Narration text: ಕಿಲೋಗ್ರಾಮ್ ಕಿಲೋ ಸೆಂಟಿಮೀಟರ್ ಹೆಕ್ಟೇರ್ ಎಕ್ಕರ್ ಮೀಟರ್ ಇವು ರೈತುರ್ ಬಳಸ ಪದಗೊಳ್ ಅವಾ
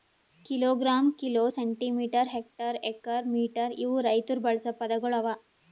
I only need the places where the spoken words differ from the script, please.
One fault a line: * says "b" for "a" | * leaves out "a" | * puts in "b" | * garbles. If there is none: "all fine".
all fine